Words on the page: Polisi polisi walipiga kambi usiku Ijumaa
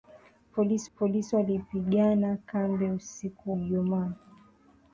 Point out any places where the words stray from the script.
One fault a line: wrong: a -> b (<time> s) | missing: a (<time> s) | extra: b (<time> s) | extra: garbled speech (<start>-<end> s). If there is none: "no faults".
no faults